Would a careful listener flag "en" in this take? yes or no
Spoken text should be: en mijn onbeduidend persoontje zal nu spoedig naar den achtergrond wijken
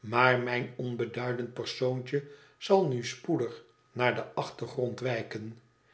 yes